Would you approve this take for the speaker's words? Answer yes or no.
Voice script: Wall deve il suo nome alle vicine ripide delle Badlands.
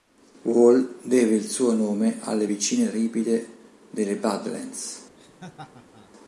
yes